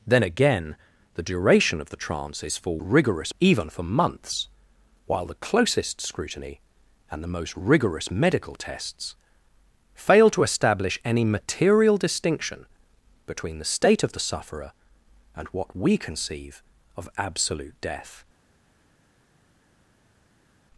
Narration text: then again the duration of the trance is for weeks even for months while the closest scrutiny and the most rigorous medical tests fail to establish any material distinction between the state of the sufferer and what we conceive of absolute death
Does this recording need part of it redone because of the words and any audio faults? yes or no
yes